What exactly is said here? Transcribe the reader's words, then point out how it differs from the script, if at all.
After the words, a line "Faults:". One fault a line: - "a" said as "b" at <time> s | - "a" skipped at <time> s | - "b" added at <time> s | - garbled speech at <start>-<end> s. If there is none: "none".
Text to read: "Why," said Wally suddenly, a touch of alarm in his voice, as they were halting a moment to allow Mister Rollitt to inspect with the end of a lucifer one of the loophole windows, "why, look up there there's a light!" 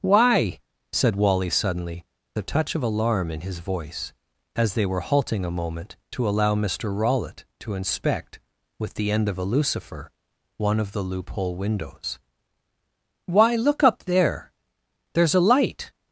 "Why," said Wally suddenly, a touch of alarm in his voice, as they were halting a moment to allow Mister Rollitt to inspect with the end of a lucifer one of the loophole windows, "why, look up there there's a light!"
Faults:
none